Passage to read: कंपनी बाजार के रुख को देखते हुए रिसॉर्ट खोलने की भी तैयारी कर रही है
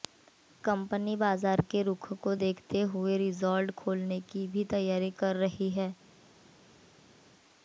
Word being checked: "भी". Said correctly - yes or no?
yes